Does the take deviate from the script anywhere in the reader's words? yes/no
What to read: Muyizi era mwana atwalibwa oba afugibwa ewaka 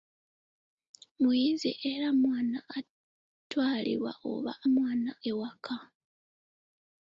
yes